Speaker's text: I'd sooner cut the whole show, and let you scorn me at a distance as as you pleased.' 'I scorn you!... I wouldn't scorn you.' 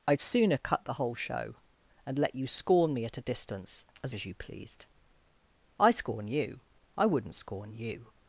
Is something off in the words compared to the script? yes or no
no